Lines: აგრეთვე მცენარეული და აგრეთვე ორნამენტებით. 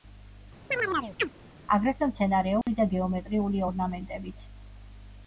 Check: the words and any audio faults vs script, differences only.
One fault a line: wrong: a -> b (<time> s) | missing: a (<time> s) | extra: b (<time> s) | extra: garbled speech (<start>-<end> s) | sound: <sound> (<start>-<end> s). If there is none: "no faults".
sound: chirp (0.7-1.3 s)
sound: dropout (2.6-2.7 s)
wrong: აგრეთვე -> გეომეტრიული (2.9 s)